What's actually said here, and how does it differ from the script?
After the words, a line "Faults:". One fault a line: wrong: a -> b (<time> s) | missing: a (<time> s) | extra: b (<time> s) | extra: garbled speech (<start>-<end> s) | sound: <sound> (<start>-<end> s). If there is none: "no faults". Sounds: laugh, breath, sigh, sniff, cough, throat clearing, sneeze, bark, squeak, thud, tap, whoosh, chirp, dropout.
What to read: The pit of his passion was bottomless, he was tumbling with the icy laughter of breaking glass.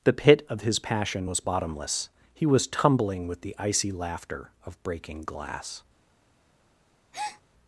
The pit of his passion was bottomless, he was tumbling with the icy laughter of breaking glass.
Faults:
sound: breath (7.1-7.4 s)